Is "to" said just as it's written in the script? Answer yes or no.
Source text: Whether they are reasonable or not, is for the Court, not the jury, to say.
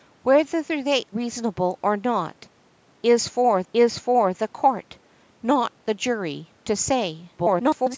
yes